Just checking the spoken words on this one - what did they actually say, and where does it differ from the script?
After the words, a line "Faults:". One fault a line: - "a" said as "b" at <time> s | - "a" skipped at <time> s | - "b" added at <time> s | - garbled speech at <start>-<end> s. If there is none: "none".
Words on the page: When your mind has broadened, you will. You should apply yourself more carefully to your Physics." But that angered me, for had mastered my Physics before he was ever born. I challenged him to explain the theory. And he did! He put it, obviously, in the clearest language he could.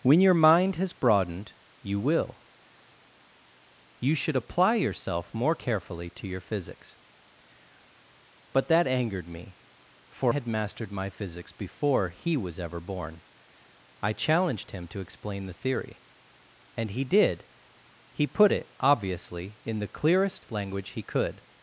When your mind has broadened, you will. You should apply yourself more carefully to your Physics." But that angered me, for had mastered my Physics before he was ever born. I challenged him to explain the theory. And he did! He put it, obviously, in the clearest language he could.
Faults:
none